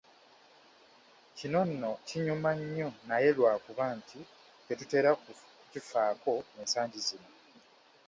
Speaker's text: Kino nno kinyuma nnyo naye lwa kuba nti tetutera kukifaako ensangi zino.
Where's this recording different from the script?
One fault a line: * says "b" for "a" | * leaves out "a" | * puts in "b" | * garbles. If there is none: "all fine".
all fine